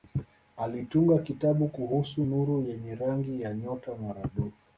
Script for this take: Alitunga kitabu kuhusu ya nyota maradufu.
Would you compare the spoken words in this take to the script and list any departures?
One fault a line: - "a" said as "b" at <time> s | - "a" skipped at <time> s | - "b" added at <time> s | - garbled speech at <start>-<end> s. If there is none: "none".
- "nuru yenye rangi" added at 2.2 s